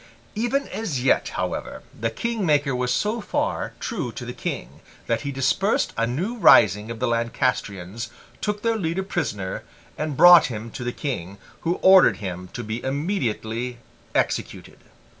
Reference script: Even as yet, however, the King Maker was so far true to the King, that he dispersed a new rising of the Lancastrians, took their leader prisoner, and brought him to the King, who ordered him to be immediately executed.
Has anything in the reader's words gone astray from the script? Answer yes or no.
no